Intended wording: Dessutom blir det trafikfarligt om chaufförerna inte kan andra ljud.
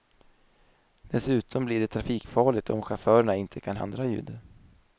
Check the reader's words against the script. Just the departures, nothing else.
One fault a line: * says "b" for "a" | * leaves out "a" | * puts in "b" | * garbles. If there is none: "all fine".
all fine